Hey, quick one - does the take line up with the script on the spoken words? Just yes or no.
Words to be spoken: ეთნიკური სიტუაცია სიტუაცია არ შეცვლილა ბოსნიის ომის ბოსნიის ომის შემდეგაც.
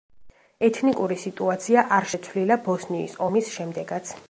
no